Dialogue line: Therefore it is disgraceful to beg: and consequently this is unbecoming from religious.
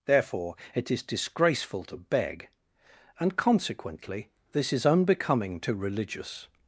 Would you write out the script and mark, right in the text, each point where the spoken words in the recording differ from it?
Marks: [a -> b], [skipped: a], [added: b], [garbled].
Therefore it is disgraceful to beg: and consequently this is unbecoming [from -> to] religious.